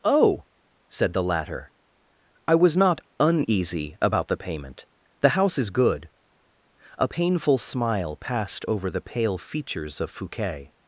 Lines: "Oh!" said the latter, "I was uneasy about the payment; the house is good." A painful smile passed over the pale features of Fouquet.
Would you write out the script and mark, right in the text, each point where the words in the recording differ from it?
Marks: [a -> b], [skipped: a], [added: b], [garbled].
"Oh!" said the latter, "I was [added: not] uneasy about the payment; the house is good." A painful smile passed over the pale features of Fouquet.